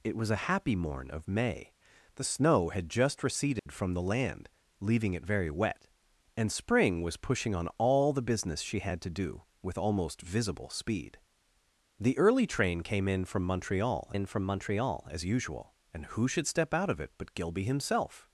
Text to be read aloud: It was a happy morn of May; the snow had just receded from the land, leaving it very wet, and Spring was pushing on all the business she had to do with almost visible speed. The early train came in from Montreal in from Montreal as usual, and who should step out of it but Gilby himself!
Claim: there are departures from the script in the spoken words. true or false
false